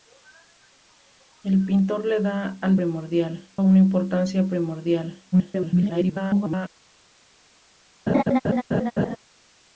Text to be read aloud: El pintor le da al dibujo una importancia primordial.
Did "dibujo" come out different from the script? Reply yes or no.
yes